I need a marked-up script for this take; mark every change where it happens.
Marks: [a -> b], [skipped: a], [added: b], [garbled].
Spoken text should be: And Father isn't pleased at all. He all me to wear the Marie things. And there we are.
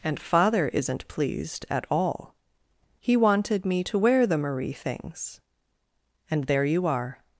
And Father isn't pleased at all. He [all -> wanted] me to wear the Marie things. And there [we -> you] are.